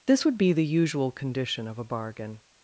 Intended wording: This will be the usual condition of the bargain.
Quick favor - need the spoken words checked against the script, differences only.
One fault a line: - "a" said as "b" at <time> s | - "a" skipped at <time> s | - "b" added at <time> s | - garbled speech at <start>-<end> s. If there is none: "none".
- "will" said as "would" at 0.2 s
- "the" said as "a" at 1.8 s